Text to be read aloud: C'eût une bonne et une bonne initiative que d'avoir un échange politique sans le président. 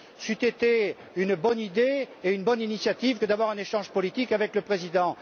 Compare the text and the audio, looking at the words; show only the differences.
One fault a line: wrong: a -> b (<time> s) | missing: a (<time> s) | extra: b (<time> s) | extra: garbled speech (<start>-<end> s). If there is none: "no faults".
extra: été (0.5 s)
extra: idée (1.6 s)
wrong: sans -> avec (4.3 s)